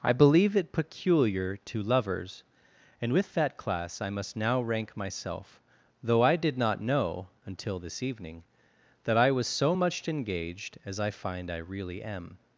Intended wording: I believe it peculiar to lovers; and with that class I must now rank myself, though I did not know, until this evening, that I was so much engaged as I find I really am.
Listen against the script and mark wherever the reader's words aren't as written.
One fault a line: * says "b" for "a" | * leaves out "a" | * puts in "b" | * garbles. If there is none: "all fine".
all fine